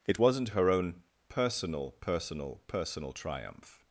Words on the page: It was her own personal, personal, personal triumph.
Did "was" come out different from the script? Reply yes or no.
yes